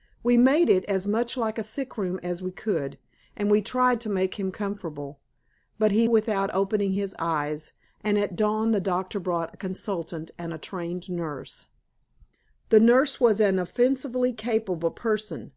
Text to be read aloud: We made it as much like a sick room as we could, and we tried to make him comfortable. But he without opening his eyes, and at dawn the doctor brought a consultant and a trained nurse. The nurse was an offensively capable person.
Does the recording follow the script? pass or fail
pass